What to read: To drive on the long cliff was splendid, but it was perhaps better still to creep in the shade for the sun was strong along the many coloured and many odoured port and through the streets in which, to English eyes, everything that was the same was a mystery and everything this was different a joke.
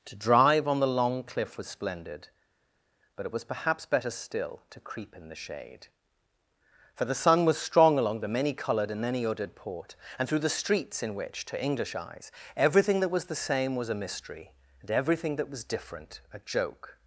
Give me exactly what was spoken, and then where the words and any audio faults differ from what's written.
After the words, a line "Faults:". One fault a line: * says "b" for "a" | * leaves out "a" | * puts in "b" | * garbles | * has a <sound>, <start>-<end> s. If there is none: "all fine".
To drive on the long cliff was splendid, but it was perhaps better still to creep in the shade for the sun was strong along the many coloured and many odoured port and through the streets in which, to English eyes, everything that was the same was a mystery and everything that was different a joke.
Faults:
* says "that" for "this"